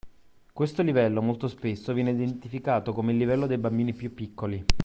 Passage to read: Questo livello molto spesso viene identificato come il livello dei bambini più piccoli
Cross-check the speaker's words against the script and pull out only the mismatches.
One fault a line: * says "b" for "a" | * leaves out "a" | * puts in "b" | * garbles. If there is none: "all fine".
all fine